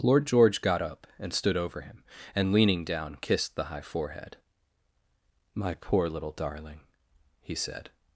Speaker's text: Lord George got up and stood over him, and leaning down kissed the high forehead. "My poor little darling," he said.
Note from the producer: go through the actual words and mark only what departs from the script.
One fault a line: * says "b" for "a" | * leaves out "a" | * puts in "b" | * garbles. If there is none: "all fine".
all fine